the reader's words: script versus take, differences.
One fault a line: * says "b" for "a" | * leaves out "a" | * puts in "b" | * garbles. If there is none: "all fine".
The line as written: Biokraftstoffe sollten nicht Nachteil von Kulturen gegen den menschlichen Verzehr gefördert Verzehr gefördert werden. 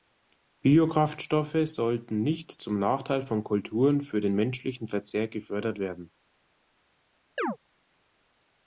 * puts in "zum"
* says "für" for "gegen"
* leaves out "Verzehr gefördert"